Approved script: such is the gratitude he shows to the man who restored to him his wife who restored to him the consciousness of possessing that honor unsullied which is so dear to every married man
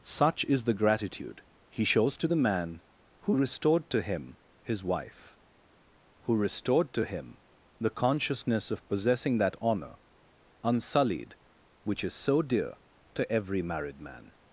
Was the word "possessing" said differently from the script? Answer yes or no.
no